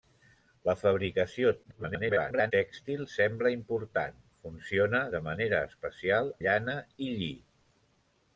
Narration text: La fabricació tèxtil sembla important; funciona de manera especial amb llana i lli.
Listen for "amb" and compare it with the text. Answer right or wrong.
wrong